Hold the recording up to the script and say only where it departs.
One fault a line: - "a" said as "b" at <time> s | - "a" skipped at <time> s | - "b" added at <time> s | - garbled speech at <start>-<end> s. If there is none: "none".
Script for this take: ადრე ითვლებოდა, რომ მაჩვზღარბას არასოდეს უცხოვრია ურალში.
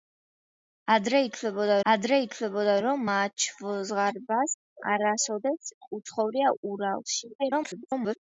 - "ადრე ითვლებოდა" added at 1.9 s
- garbled speech at 7.4-8.2 s